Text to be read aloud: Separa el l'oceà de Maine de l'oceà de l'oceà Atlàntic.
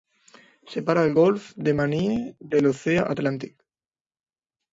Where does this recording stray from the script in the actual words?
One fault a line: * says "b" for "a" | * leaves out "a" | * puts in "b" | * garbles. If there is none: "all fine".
* says "golf" for "l'oceà"
* leaves out "de l'oceà"